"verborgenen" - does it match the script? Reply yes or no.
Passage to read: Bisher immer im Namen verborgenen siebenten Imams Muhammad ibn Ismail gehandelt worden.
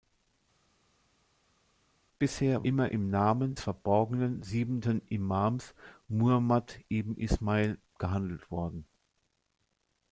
yes